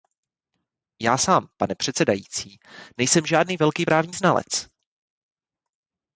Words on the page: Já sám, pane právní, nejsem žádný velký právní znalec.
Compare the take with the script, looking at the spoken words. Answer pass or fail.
fail